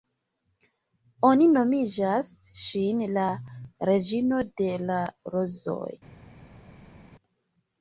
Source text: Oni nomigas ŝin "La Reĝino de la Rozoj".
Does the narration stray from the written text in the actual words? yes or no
no